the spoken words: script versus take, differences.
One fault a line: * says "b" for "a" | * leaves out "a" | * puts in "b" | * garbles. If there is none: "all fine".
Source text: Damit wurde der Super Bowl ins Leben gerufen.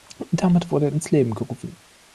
* leaves out "der Super Bowl"